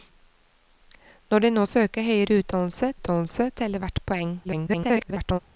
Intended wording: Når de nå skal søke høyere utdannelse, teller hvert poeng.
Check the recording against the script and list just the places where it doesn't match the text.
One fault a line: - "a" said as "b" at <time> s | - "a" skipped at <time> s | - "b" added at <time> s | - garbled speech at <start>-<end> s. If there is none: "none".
- "skal" skipped at 1.6 s
- "utdannelse" added at 2.9 s
- garbled speech at 4.4-5.4 s